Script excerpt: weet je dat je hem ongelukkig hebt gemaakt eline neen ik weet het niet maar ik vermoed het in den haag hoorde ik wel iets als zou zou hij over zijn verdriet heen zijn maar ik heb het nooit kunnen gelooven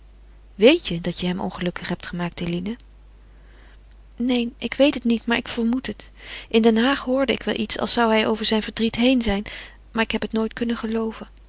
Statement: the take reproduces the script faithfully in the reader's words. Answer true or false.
false